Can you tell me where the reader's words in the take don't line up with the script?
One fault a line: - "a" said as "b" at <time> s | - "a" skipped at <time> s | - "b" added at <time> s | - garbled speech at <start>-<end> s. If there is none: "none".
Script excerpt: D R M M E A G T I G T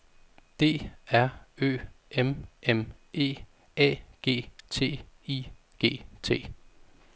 - "Ø" added at 1.6 s